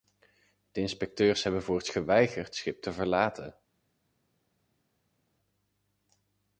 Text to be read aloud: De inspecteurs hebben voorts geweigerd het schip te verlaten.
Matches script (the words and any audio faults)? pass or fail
fail